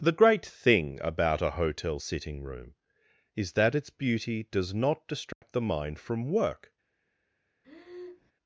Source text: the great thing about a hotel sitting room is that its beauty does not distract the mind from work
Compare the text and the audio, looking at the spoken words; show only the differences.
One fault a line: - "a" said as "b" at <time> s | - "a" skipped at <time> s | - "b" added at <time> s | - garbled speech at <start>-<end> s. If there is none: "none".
none